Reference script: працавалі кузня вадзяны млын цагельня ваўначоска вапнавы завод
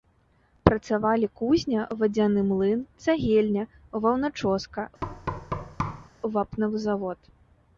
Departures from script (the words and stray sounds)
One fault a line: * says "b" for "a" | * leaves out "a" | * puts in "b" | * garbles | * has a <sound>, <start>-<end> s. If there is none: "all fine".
* has a thud, 5.0-6.1 s